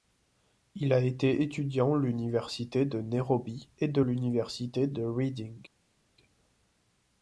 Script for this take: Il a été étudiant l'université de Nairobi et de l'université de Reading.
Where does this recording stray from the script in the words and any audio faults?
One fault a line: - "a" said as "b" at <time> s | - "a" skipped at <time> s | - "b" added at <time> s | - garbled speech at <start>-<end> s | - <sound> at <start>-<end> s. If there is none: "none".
none